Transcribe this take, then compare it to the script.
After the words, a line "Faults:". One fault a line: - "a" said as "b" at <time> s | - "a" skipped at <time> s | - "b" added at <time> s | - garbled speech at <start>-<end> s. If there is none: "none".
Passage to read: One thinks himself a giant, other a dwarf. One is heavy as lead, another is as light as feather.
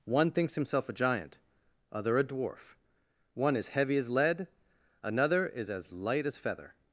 One thinks himself a giant, other a dwarf. One is heavy as lead, another is as light as feather.
Faults:
none